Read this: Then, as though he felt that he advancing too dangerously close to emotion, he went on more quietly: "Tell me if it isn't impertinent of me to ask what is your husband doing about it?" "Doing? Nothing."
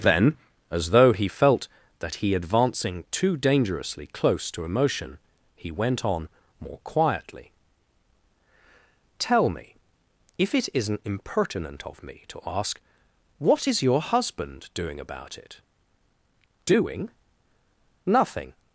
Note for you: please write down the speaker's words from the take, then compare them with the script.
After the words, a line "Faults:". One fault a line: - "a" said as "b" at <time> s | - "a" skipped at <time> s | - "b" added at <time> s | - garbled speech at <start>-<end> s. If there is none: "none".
Then, as though he felt that he advancing too dangerously close to emotion, he went on more quietly: "Tell me if it isn't impertinent of me to ask what is your husband doing about it?" "Doing? Nothing."
Faults:
none